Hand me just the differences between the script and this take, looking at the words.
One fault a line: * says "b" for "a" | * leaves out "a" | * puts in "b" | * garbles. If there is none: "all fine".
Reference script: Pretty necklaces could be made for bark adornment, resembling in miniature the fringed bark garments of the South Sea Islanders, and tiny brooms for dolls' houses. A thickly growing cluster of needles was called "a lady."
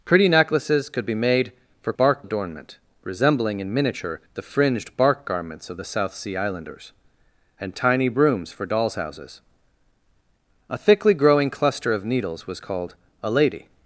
all fine